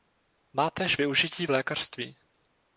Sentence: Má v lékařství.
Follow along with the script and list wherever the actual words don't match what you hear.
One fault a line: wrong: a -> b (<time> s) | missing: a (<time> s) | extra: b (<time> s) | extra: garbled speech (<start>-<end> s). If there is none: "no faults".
extra: též využití (0.7 s)